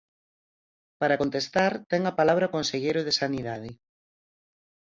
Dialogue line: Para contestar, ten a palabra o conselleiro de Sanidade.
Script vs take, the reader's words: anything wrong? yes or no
no